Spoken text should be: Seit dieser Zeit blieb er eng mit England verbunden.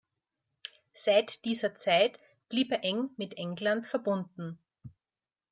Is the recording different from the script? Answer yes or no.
no